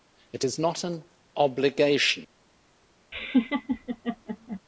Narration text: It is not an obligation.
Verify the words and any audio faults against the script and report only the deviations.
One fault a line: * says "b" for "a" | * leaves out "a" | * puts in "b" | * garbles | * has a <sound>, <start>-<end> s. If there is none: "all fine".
* has a laugh, 3.1-4.6 s